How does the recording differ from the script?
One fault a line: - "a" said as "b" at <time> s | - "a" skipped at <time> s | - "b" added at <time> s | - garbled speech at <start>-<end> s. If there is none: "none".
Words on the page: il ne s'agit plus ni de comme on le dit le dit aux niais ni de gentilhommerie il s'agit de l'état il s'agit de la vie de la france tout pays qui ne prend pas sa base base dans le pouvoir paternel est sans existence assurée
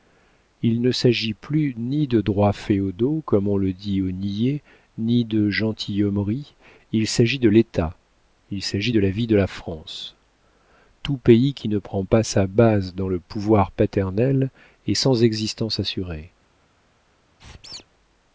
- "droits féodaux" added at 2.2 s
- "le dit" skipped at 4.0 s
- "base" skipped at 12.9 s